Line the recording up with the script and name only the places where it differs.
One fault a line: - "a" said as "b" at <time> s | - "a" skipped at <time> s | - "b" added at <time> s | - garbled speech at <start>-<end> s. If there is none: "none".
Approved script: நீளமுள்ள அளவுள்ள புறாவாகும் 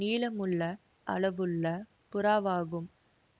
none